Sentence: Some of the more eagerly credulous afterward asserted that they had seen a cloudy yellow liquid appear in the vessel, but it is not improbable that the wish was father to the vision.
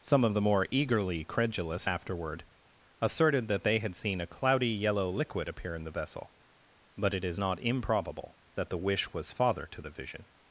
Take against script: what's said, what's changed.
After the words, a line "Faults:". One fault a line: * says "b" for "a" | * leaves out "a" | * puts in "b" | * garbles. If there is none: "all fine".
Some of the more eagerly credulous afterward asserted that they had seen a cloudy yellow liquid appear in the vessel, but it is not improbable that the wish was father to the vision.
Faults:
all fine